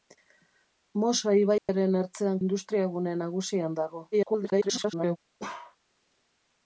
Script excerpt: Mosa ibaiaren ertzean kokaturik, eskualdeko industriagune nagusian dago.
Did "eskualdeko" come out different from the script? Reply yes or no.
yes